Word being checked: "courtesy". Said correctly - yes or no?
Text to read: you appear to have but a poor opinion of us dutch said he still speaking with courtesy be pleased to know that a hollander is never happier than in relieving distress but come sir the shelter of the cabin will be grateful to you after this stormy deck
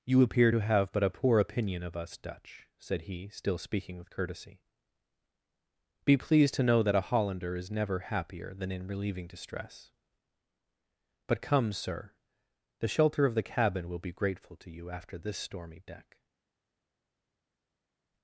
yes